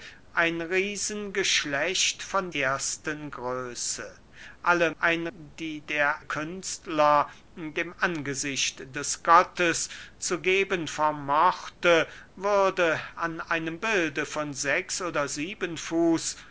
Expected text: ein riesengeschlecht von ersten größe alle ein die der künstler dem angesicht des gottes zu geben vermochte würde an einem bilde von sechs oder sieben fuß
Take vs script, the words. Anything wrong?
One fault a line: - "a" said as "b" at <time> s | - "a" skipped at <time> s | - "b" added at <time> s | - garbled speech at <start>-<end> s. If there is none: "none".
none